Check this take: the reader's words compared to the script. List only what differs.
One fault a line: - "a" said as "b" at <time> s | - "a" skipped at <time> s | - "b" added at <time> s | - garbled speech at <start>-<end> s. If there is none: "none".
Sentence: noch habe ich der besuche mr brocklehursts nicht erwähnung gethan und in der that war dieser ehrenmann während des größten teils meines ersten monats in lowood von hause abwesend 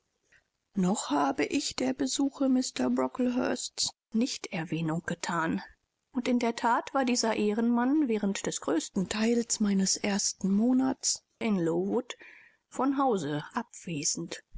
none